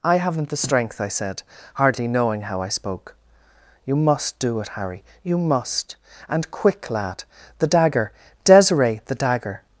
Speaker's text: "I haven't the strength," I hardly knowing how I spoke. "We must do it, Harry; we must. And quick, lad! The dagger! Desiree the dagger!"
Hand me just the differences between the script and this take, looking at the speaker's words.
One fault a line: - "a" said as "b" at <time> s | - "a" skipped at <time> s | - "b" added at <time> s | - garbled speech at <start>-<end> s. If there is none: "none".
- "said" added at 1.1 s
- "We" said as "You" at 3.9 s
- "we" said as "you" at 5.2 s